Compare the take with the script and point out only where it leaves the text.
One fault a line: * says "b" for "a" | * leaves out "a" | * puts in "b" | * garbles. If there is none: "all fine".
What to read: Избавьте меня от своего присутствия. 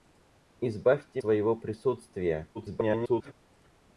* leaves out "меня от"
* garbles